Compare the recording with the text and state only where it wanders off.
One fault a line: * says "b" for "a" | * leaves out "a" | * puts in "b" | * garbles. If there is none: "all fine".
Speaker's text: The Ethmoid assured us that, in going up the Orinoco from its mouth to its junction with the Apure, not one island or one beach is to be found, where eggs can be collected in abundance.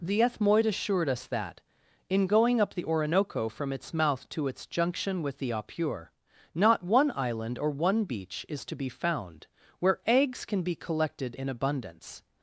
all fine